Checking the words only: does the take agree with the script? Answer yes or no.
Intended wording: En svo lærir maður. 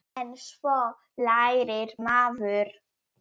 yes